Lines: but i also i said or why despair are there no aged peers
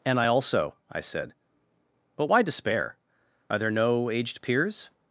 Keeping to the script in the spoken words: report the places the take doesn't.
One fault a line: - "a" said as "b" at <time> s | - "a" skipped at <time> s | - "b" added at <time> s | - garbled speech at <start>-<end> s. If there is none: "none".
- "but" said as "and" at 0.1 s
- "or" said as "but" at 2.2 s